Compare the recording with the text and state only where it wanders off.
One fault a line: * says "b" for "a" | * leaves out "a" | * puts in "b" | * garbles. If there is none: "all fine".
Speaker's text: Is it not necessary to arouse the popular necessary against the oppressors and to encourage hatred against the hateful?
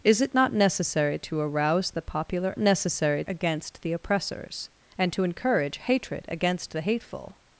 all fine